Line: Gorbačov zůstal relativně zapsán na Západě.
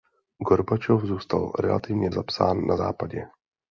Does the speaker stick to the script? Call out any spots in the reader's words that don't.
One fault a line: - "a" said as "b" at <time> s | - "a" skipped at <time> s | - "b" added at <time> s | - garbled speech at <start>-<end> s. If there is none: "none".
none